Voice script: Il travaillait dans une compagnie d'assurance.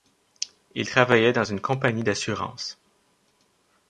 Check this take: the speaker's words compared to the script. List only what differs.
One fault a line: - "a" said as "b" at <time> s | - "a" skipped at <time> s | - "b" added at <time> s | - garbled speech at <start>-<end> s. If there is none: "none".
none